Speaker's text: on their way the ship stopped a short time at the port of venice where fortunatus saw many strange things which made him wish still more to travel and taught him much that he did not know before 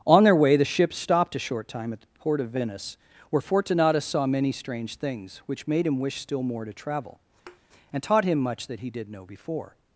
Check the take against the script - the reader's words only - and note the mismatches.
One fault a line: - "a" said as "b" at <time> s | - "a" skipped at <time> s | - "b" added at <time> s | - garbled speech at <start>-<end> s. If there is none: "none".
- "not" skipped at 9.1 s